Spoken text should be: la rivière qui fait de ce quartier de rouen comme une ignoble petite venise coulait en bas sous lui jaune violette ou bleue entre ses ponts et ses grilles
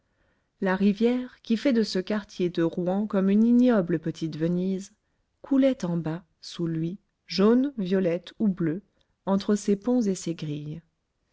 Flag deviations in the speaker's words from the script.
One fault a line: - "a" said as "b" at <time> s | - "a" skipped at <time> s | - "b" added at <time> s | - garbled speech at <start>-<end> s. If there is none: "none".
none